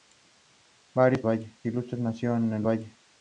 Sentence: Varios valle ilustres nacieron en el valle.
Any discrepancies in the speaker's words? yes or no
no